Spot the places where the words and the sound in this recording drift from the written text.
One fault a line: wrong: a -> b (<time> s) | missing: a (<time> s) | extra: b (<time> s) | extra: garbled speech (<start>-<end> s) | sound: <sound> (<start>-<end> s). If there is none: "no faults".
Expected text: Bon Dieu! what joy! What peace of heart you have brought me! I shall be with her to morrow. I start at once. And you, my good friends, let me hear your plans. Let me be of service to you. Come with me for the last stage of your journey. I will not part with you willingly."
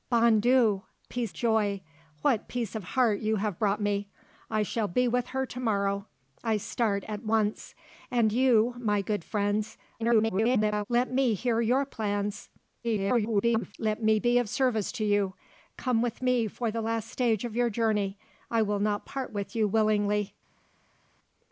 wrong: what -> peace (1.1 s)
extra: garbled speech (10.0-10.9 s)
extra: garbled speech (12.8-13.7 s)